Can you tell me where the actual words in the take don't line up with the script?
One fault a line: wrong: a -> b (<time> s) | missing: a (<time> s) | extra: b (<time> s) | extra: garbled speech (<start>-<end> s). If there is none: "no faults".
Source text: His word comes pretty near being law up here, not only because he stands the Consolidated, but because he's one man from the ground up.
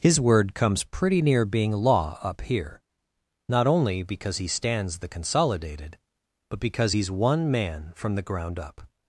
no faults